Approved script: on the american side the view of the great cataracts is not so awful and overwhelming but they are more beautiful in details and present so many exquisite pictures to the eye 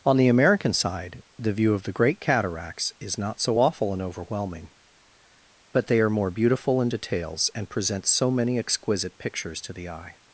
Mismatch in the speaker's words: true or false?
false